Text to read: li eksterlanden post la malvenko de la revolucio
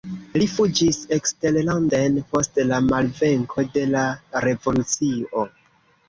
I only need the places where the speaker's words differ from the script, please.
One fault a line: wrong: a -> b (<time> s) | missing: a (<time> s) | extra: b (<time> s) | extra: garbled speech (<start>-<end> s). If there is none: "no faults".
extra: fuĝis (0.5 s)